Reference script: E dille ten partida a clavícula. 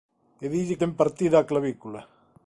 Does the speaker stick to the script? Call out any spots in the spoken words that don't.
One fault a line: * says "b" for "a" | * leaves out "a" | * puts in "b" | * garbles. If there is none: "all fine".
all fine